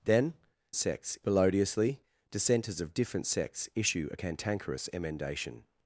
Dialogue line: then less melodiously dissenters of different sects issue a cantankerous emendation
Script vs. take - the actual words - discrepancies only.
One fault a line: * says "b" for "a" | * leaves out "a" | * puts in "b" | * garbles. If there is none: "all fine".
* says "sects" for "less"